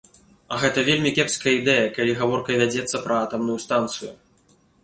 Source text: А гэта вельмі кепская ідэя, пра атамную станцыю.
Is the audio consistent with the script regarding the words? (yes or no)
no